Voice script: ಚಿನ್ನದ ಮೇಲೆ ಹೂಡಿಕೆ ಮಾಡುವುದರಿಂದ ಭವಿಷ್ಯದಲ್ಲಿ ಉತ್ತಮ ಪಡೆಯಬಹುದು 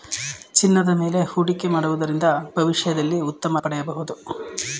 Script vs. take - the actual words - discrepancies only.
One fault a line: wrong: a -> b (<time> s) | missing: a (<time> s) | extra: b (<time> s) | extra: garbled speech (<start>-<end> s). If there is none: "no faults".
no faults